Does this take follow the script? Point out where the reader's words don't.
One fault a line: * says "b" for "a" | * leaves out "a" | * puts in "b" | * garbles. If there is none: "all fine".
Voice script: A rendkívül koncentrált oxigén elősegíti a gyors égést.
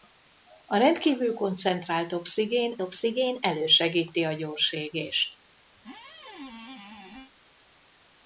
* puts in "oxigén"